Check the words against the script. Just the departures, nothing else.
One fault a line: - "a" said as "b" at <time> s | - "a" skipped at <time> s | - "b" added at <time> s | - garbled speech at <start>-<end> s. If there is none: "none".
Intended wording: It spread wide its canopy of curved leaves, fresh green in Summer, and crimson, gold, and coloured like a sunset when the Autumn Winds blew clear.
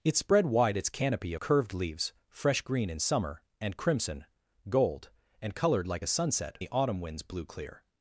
- "of" skipped at 1.4 s
- "when" skipped at 6.6 s